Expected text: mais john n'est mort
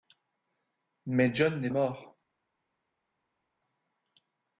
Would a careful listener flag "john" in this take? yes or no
no